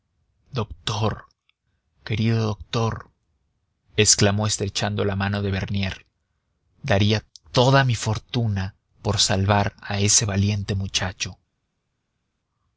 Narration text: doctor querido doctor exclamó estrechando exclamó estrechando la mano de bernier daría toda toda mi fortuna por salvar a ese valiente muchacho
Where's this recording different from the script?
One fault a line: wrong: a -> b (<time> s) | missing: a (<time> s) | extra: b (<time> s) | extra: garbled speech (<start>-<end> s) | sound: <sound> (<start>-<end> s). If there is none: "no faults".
missing: exclamó estrechando (5.0 s)
missing: toda (7.8 s)